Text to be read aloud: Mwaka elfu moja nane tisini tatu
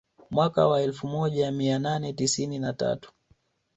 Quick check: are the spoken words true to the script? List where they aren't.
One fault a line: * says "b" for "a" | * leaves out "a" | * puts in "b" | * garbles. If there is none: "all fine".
* puts in "wa"
* puts in "mia"
* puts in "na"